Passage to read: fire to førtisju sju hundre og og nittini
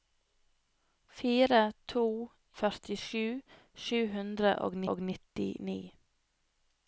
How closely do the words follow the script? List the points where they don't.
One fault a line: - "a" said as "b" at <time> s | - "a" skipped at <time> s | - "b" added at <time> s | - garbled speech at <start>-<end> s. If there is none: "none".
none